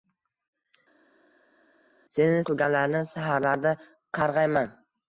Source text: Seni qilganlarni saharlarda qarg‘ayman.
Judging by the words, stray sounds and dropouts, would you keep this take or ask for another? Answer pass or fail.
pass